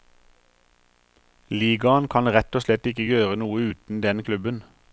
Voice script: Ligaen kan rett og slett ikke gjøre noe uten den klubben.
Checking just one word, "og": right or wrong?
right